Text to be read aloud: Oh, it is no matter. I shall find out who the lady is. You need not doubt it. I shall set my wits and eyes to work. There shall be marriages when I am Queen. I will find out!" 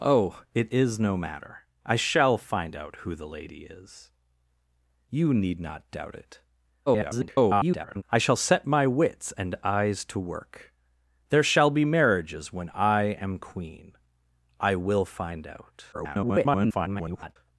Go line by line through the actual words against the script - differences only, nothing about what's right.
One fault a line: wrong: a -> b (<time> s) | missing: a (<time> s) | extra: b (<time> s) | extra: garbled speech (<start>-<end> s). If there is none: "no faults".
extra: garbled speech (6.9-8.0 s)
extra: garbled speech (15.9-17.4 s)